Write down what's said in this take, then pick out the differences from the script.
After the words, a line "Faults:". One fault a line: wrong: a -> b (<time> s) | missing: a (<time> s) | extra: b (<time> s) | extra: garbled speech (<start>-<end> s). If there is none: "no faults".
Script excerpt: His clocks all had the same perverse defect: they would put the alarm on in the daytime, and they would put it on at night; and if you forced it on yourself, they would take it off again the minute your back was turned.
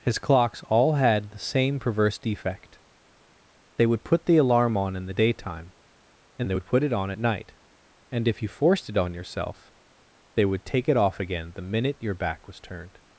His clocks all had the same perverse defect: they would put the alarm on in the daytime, and they would put it on at night; and if you forced it on yourself, they would take it off again the minute your back was turned.
Faults:
no faults